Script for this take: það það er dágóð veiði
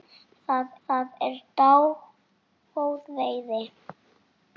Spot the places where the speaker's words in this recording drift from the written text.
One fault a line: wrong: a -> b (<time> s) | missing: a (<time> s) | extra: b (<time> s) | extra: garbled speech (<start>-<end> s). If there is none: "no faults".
no faults